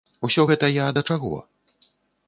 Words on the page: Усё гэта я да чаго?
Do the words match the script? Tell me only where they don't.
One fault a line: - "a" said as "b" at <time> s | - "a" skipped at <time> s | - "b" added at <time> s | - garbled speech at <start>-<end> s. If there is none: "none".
none